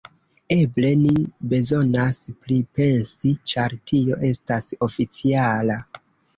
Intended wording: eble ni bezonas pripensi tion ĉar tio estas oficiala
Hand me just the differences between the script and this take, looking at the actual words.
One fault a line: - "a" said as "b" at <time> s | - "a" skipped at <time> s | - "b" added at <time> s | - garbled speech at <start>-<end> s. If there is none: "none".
- "tion" skipped at 3.4 s